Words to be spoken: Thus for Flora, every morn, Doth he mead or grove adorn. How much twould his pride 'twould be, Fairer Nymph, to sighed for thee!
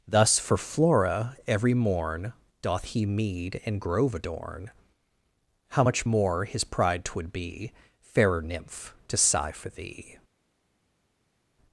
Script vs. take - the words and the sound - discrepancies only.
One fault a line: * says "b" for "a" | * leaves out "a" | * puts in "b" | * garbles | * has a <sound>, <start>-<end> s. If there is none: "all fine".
* says "and" for "or"
* says "more" for "twould"
* says "sigh" for "sighed"